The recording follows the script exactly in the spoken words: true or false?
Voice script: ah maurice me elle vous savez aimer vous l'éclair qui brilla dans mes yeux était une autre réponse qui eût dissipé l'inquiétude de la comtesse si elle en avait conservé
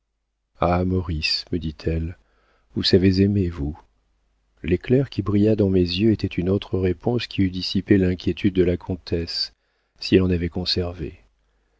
false